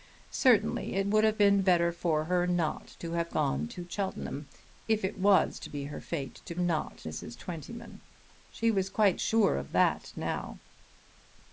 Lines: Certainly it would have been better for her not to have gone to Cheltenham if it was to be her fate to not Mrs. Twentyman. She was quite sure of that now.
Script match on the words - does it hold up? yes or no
yes